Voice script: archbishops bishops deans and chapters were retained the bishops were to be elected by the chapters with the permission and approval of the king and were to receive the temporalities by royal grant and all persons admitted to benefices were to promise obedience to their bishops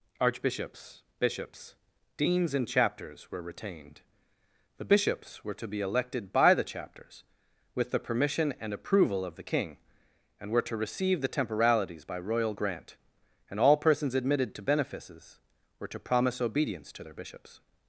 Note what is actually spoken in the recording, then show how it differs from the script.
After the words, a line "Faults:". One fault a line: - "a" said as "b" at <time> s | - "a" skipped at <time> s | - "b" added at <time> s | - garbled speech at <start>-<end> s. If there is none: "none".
archbishops bishops deans and chapters were retained the bishops were to be elected by the chapters with the permission and approval of the king and were to receive the temporalities by royal grant and all persons admitted to benefices were to promise obedience to their bishops
Faults:
none